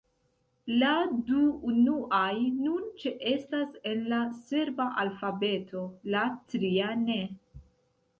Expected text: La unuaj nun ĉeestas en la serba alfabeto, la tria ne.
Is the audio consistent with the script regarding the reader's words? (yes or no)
no